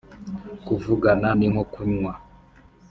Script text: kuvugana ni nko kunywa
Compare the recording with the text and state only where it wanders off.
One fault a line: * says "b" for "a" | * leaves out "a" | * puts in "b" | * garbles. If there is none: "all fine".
all fine